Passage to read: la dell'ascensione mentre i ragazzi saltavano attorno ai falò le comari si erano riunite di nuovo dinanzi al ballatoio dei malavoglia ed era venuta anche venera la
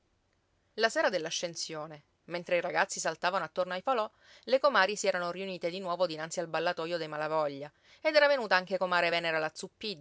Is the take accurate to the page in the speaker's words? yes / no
no